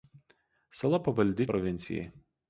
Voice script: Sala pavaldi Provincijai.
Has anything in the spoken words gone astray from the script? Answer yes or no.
no